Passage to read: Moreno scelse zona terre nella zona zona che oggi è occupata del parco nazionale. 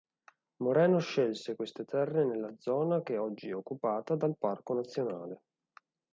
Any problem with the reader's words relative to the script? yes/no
yes